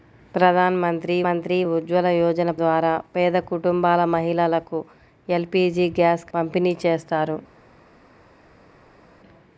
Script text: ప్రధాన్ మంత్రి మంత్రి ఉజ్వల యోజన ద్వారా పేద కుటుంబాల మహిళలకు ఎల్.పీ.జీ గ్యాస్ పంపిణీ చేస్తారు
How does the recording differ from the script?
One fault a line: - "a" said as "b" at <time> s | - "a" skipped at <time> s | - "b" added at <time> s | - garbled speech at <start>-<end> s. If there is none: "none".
none